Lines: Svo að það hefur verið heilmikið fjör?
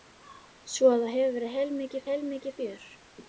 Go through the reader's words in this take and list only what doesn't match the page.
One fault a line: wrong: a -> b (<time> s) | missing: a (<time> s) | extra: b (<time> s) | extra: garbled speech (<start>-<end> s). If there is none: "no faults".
extra: heilmikið (2.1 s)